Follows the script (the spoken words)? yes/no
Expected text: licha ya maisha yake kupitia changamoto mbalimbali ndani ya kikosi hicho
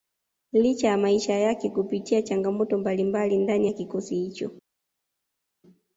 yes